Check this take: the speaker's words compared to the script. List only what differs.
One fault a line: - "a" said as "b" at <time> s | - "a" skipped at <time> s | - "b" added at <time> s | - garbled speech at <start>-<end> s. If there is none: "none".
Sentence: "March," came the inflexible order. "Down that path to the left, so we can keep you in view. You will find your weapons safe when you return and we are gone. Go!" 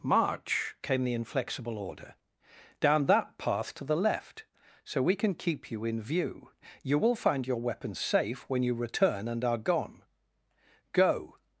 - "we" skipped at 9.4 s